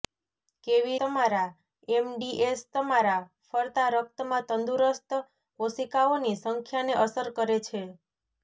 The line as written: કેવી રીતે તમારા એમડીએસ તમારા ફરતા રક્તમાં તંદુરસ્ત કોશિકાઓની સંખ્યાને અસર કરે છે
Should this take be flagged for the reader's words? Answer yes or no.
yes